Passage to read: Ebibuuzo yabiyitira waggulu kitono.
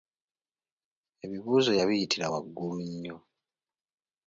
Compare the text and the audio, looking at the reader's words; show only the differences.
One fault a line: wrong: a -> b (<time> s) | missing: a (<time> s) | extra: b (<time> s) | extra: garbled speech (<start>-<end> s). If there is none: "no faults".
wrong: kitono -> nnyo (2.9 s)